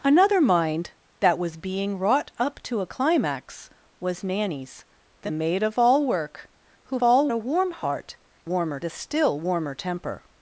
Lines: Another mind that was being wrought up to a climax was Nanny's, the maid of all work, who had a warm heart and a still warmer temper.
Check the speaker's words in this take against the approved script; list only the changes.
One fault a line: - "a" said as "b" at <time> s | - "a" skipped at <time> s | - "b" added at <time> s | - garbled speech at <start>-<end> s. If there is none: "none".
- "had" said as "all" at 7.0 s
- "and" said as "warmer" at 8.4 s